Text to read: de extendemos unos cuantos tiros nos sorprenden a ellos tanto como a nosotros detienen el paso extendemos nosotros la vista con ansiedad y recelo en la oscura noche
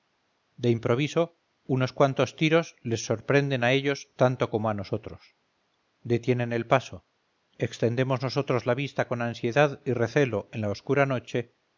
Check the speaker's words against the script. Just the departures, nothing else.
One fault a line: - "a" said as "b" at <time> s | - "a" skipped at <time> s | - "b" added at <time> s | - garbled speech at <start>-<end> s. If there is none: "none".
- "extendemos" said as "improviso" at 0.7 s
- "nos" said as "les" at 2.8 s